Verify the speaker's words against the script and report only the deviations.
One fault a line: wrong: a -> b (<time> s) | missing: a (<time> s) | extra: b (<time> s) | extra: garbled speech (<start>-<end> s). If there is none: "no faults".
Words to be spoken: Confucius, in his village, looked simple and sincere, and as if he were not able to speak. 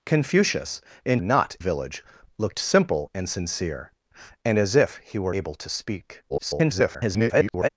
wrong: his -> not (1.2 s)
missing: not (5.4 s)
extra: garbled speech (6.3-7.7 s)